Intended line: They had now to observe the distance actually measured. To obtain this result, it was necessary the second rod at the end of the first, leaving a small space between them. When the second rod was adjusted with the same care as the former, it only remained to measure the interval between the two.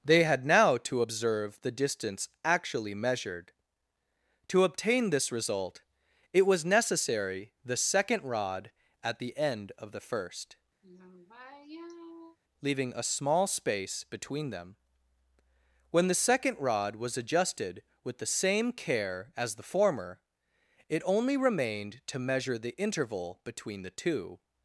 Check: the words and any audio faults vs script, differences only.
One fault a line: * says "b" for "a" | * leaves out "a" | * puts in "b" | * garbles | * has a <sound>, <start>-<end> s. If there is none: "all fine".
* has a sigh, 10.8-12.4 s